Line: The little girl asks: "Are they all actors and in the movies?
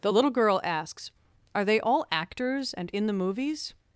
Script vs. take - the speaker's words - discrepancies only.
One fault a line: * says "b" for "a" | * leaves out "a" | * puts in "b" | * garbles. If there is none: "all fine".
all fine